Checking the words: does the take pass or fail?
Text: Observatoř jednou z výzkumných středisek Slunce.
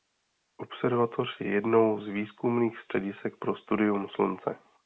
fail